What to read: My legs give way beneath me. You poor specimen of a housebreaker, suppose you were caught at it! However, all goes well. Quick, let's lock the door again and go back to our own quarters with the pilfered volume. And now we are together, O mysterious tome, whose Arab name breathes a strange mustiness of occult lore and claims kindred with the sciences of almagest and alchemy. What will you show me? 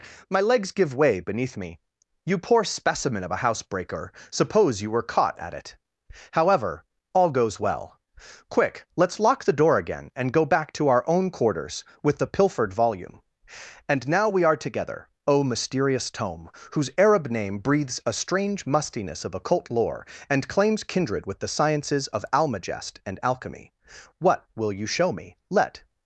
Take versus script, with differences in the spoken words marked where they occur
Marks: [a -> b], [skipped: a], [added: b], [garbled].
My legs give way beneath me. You poor specimen of a housebreaker, suppose you were caught at it! However, all goes well. Quick, let's lock the door again and go back to our own quarters with the pilfered volume. And now we are together, O mysterious tome, whose Arab name breathes a strange mustiness of occult lore and claims kindred with the sciences of almagest and alchemy. What will you show me? [added: Let]